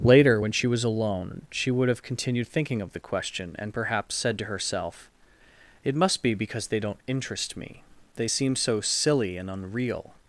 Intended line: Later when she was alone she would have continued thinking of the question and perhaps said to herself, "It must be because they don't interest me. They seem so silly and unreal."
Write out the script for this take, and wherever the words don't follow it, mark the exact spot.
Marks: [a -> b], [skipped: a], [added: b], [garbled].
Later when she was alone she would have continued thinking of the question and perhaps said to herself, "It must be because they don't interest me. They seem so silly and unreal."